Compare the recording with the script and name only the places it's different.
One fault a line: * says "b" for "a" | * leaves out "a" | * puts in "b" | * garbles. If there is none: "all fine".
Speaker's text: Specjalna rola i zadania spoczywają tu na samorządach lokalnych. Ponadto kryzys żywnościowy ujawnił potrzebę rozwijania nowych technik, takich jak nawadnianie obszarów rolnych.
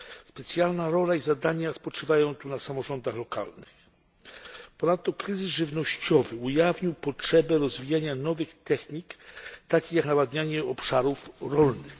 all fine